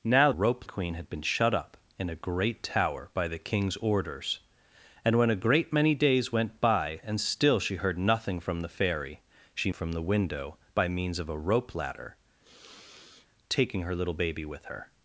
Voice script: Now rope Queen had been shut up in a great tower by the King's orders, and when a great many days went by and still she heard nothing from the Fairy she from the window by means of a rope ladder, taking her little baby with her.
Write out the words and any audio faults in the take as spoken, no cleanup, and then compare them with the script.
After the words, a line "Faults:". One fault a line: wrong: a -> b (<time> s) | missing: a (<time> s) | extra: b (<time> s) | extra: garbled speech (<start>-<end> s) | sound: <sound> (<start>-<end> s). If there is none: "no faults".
Now rope Queen had been shut up in a great tower by the King's orders, and when a great many days went by and still she heard nothing from the Fairy she from the window by means of a rope ladder, taking her little baby with her.
Faults:
sound: sniff (12.4-13.3 s)